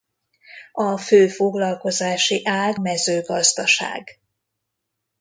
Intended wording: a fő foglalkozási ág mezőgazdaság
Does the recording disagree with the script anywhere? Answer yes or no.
no